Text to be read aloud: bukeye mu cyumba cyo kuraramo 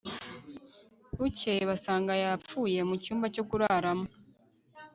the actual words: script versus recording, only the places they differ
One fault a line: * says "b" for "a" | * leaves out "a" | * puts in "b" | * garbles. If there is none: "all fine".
* puts in "basanga yapfuye"